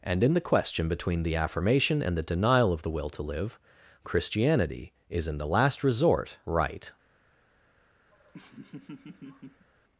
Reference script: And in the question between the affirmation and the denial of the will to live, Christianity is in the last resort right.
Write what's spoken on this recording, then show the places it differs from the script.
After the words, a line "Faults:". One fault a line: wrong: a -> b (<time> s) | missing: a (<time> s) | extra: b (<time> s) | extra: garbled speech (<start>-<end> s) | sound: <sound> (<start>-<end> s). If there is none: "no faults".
And in the question between the affirmation and the denial of the will to live, Christianity is in the last resort right.
Faults:
sound: laugh (8.1-9.7 s)